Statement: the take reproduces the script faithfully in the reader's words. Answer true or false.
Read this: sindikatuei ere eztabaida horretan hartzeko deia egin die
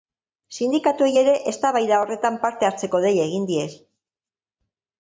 false